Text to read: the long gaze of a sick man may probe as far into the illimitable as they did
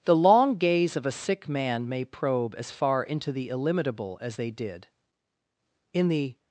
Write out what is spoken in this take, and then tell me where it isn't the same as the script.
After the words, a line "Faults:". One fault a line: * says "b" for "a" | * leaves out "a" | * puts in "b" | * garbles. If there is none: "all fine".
the long gaze of a sick man may probe as far into the illimitable as they did in the
Faults:
* puts in "in the"